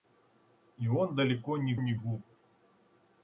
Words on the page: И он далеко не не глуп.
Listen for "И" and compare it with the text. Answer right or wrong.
right